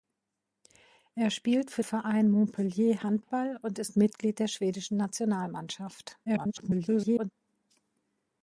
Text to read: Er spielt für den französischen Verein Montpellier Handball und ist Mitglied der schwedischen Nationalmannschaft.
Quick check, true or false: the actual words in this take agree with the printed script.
false